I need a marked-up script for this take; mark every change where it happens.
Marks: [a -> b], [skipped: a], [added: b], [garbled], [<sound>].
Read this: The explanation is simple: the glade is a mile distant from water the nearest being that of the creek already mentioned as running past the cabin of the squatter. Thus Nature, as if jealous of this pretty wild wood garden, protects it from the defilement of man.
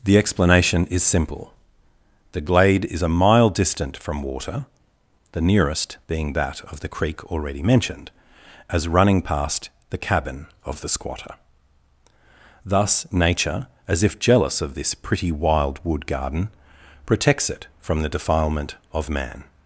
The explanation is simple: the glade is a mile distant from water the nearest being that of the creek already mentioned as running past the cabin of the squatter. Thus Nature, as if jealous of this pretty wild wood garden, protects it from the defilement of man.